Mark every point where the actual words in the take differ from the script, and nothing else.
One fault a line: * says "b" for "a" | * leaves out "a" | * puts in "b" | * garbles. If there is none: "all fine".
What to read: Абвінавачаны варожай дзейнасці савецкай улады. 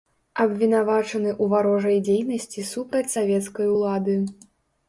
* puts in "ў"
* puts in "супраць"